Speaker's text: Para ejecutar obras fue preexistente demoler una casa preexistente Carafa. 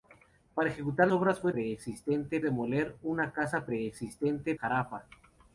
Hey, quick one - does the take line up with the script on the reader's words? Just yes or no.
yes